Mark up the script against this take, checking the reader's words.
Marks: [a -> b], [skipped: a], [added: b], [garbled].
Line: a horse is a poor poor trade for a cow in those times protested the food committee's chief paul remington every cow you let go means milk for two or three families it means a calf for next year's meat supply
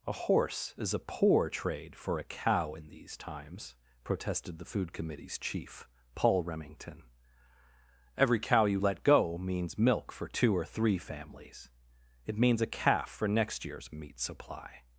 a horse is a poor [skipped: poor] trade for a cow in [those -> these] times protested the food committee's chief paul remington every cow you let go means milk for two or three families it means a calf for next year's meat supply